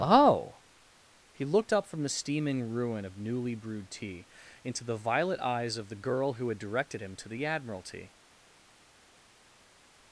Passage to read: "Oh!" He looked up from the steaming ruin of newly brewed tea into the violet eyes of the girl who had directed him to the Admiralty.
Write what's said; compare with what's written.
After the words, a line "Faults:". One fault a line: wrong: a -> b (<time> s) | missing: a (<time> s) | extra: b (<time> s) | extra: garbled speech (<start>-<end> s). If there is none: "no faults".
"Oh!" He looked up from the steaming ruin of newly brewed tea into the violet eyes of the girl who had directed him to the Admiralty.
Faults:
no faults